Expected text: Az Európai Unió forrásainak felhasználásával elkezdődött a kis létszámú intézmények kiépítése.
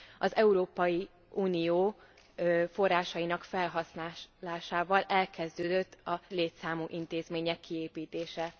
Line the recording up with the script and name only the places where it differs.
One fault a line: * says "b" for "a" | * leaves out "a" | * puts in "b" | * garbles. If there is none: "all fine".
* leaves out "kis"